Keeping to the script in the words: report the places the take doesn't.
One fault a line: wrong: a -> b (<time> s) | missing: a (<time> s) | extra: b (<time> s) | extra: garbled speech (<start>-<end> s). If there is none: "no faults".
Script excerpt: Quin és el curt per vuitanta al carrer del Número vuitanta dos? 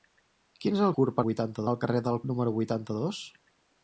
no faults